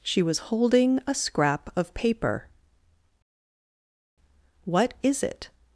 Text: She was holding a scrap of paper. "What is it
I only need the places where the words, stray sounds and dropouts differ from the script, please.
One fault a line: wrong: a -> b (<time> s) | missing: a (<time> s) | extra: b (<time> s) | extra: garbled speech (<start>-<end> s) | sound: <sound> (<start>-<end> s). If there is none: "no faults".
no faults